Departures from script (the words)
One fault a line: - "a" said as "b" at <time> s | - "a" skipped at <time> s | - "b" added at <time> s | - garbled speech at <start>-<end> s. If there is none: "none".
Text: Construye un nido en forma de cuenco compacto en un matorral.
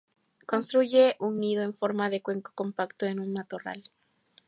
none